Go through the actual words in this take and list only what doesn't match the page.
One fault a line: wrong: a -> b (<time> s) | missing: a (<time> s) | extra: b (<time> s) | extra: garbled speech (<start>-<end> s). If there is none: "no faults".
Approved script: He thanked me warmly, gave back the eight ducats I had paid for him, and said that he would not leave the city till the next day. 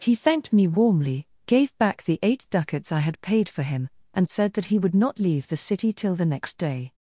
no faults